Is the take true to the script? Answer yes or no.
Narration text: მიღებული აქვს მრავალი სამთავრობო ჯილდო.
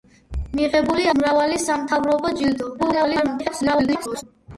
no